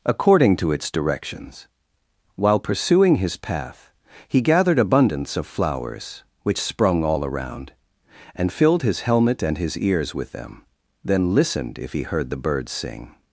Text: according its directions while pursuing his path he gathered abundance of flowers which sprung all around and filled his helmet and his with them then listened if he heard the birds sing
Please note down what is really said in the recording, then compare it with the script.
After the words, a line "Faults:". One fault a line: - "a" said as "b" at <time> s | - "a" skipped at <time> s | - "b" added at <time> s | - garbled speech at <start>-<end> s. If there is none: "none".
according to its directions while pursuing his path he gathered abundance of flowers which sprung all around and filled his helmet and his ears with them then listened if he heard the birds sing
Faults:
- "to" added at 0.6 s
- "ears" added at 9.8 s